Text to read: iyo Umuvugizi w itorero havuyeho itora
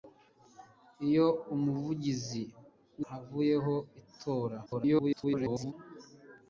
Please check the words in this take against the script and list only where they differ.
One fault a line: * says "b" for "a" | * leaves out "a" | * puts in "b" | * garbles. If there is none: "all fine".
* leaves out "itorero"
* garbles